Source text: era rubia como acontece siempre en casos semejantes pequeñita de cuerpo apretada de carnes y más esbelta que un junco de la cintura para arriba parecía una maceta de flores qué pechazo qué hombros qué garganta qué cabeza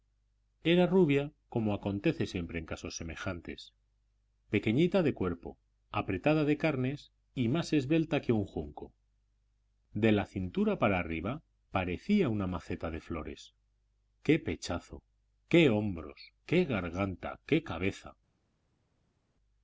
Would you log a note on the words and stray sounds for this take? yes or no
no